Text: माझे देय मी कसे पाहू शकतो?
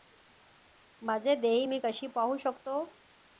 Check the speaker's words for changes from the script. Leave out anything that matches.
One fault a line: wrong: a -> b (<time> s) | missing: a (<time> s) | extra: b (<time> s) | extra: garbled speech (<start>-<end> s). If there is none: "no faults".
no faults